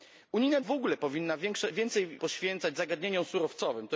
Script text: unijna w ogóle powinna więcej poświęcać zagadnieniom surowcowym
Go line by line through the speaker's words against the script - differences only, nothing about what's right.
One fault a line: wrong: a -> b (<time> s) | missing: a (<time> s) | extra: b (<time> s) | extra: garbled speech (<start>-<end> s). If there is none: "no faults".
no faults